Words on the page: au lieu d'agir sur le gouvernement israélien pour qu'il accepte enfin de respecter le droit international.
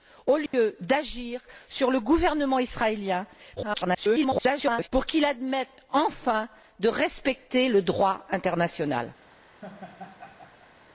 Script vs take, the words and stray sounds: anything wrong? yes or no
yes